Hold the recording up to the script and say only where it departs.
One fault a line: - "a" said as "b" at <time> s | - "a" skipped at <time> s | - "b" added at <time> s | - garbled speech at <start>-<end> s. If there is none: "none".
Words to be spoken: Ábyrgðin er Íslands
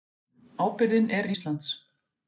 none